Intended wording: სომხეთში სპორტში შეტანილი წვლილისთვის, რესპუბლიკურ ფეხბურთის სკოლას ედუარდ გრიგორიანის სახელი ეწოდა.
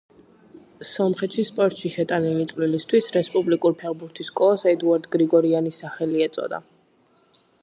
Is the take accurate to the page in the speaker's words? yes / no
yes